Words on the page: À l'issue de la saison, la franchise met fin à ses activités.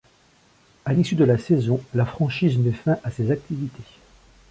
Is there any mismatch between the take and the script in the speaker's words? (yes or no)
no